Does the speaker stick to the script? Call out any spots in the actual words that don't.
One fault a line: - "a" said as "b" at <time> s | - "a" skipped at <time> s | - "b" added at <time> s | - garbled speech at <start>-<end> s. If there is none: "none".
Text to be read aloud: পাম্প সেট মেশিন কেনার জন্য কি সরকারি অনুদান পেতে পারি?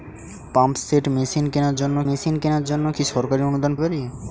- "মেশিন কেনার জন্য" added at 2.1 s
- "পেতে" skipped at 3.7 s